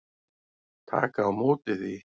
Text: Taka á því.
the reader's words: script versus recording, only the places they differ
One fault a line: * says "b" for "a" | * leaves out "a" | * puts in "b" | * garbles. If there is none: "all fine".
* puts in "móti"